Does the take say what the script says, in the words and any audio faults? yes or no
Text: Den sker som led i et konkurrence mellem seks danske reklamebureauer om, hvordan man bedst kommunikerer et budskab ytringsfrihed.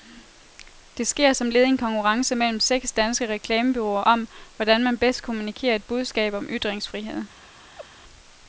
no